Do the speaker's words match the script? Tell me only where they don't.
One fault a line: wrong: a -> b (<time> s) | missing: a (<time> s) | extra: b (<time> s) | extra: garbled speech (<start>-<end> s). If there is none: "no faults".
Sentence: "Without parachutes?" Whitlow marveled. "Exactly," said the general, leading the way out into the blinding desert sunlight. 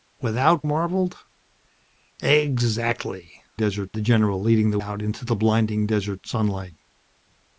missing: parachutes Whitlow (0.7 s)
wrong: said -> desert (3.5 s)
missing: way (4.8 s)